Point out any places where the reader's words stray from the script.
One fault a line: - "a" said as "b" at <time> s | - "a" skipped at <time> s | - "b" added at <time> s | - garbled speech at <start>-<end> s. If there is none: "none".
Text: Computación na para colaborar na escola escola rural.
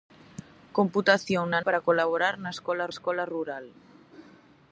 none